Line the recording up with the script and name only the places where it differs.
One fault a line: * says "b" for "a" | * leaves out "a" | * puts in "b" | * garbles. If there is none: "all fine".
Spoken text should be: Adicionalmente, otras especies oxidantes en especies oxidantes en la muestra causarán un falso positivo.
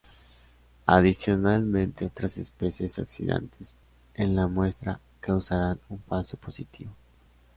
* leaves out "especies oxidantes en"